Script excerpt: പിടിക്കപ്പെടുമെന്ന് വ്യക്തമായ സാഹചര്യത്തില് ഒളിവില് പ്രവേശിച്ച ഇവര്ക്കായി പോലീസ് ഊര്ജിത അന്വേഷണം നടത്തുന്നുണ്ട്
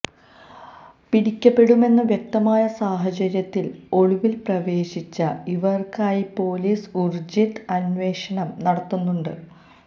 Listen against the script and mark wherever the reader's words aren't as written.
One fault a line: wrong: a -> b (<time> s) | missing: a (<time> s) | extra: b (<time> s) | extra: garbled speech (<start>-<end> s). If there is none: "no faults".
no faults